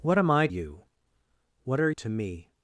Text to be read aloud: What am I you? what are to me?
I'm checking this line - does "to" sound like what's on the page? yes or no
yes